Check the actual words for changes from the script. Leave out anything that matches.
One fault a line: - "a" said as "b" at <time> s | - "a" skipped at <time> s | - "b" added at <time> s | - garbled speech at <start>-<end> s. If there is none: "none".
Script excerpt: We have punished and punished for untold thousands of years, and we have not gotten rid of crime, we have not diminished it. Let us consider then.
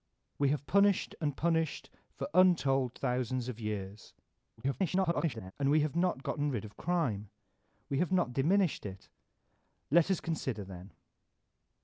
- garbled speech at 4.6-5.5 s